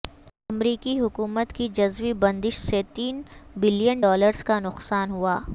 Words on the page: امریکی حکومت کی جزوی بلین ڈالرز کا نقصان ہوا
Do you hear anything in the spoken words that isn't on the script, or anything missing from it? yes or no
yes